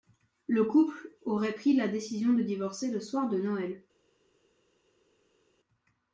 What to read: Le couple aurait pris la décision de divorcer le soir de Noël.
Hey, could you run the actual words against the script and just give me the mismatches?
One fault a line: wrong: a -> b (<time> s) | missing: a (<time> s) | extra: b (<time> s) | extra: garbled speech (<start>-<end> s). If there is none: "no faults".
no faults